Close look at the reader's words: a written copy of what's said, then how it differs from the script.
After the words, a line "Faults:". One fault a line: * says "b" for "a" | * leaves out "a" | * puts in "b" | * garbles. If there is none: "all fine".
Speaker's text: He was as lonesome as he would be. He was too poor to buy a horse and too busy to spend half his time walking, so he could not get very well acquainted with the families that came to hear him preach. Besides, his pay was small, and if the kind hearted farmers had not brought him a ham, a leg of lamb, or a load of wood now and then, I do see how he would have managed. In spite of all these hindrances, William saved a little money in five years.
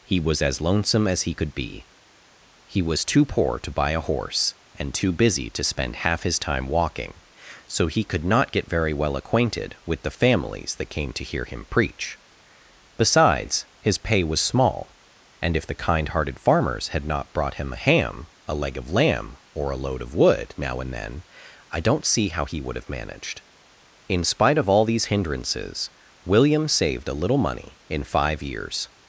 He was as lonesome as he could be. He was too poor to buy a horse and too busy to spend half his time walking, so he could not get very well acquainted with the families that came to hear him preach. Besides, his pay was small, and if the kind hearted farmers had not brought him a ham, a leg of lamb, or a load of wood now and then, I don't see how he would have managed. In spite of all these hindrances, William saved a little money in five years.
Faults:
* says "could" for "would"
* says "don't" for "do"